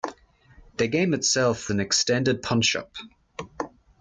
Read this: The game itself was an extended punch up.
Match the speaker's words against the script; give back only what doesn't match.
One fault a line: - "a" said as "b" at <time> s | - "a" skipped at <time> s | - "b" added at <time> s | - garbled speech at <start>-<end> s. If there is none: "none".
- "was" skipped at 1.7 s